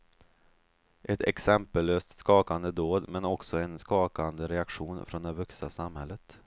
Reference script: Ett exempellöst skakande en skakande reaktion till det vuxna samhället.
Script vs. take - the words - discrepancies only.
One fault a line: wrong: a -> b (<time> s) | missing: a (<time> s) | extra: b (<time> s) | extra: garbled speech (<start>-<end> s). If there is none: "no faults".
extra: dåd men också (2.7 s)
wrong: till -> från (5.0 s)